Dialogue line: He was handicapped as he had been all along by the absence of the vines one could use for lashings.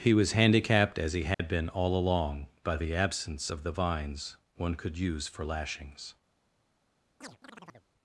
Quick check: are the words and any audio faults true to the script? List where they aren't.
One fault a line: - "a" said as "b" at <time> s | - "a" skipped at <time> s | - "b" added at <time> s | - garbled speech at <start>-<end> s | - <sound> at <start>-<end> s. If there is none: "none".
- dropout at 1.3-1.4 s
- chirp at 7.2-7.9 s